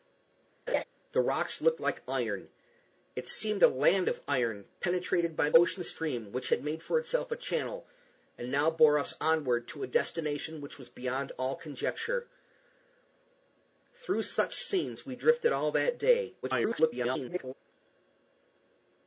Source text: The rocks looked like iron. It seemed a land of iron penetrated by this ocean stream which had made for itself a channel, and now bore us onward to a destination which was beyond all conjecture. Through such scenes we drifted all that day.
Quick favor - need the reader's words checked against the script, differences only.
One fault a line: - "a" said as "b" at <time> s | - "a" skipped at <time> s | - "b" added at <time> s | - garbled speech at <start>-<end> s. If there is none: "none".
- "this" skipped at 5.5 s
- garbled speech at 16.4-17.5 s